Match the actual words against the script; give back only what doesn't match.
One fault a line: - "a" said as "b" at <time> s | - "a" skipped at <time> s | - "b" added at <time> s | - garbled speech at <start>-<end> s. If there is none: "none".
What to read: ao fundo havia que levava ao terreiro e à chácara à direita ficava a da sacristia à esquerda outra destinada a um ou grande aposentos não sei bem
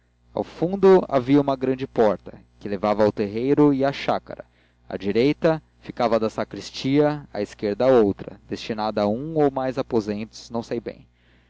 - "uma grande porta" added at 1.4 s
- "grande" said as "mais" at 9.5 s